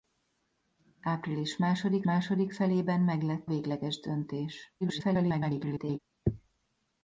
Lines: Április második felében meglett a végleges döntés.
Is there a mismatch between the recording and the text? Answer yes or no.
yes